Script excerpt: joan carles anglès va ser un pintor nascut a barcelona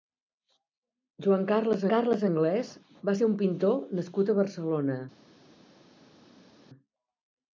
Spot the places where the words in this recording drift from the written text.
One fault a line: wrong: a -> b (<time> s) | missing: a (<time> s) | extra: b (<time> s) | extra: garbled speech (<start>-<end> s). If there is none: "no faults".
extra: carles (1.9 s)